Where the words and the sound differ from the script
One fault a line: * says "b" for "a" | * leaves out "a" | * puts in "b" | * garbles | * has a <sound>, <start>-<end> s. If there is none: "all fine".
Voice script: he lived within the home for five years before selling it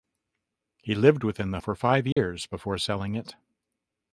* leaves out "home"
* has a dropout, 2.1-2.2 s